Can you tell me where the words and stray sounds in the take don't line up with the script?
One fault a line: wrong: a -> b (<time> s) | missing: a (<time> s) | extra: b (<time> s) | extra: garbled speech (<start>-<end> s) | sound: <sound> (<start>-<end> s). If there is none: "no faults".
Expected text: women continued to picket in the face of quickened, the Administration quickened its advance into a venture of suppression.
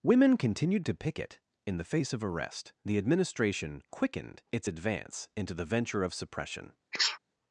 wrong: quickened -> arrest (2.2 s)
wrong: a -> the (5.6 s)
sound: sneeze (6.9-7.2 s)